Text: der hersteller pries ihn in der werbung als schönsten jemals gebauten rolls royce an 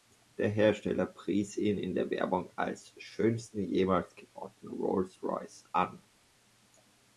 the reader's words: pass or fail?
pass